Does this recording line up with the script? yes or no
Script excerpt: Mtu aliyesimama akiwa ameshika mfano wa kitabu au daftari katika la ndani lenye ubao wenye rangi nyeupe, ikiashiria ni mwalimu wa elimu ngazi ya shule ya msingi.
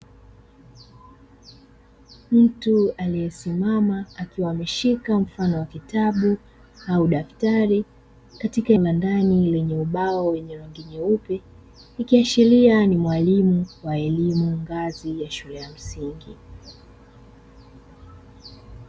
yes